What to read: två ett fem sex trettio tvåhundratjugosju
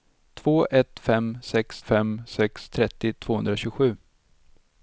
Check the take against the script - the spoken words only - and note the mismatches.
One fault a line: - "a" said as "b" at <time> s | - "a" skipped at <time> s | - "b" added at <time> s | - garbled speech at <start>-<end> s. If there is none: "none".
- "fem sex" added at 1.8 s